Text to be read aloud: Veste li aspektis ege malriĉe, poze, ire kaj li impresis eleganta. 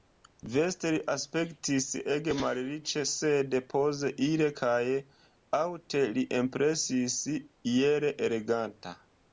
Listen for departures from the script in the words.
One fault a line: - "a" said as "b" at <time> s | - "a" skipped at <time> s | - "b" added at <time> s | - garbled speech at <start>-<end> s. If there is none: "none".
- "sed" added at 3.1 s
- "aŭte" added at 5.6 s
- "iel" added at 7.8 s